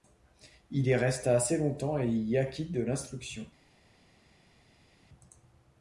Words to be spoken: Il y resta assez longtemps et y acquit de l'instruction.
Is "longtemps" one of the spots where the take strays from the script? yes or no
no